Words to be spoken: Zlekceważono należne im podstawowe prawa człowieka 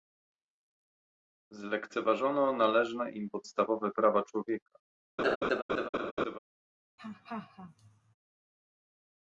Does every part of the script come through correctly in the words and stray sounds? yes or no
no